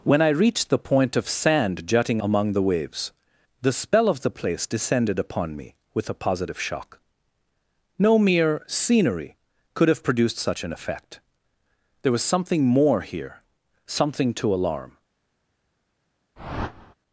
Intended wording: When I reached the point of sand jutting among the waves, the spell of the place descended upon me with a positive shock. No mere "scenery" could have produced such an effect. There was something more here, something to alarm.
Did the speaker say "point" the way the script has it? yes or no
yes